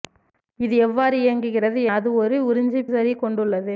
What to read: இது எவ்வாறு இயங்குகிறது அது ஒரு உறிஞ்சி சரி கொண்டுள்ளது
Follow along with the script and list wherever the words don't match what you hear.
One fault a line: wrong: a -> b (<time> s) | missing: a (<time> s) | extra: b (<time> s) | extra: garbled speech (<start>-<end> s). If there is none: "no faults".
no faults